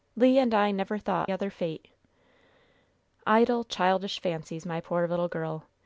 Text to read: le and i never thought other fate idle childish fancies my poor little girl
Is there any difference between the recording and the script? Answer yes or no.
no